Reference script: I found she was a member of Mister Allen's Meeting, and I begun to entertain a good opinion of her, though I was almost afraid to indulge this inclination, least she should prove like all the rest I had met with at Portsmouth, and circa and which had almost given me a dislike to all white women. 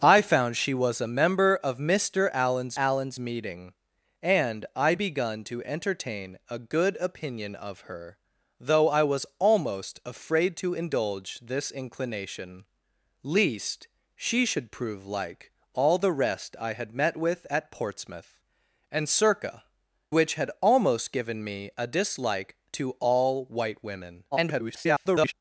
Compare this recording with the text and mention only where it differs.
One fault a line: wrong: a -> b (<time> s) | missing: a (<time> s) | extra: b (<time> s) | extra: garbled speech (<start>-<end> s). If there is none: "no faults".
extra: Allen's (2.7 s)
missing: and (19.6 s)
extra: garbled speech (24.3-25.3 s)